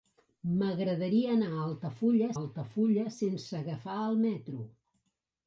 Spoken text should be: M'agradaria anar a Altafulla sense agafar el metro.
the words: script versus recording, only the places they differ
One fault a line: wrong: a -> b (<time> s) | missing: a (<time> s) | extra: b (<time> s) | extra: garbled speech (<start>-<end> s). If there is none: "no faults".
extra: Altafulla (2.4 s)